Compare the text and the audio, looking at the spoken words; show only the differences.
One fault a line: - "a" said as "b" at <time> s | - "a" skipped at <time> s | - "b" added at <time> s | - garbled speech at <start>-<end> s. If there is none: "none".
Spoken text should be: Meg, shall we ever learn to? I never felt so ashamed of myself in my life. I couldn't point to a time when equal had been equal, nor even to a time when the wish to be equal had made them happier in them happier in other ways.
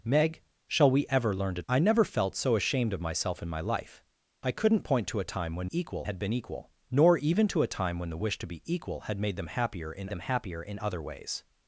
none